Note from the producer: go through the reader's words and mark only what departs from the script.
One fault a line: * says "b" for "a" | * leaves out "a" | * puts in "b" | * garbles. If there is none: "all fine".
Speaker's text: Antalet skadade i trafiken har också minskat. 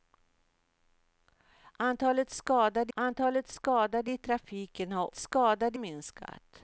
* puts in "antalet skadade"
* says "skadade" for "också"